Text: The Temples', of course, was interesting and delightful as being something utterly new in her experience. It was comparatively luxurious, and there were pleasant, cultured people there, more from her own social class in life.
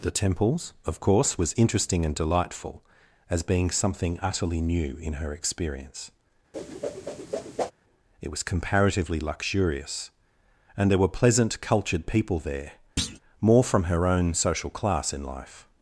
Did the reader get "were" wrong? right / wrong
right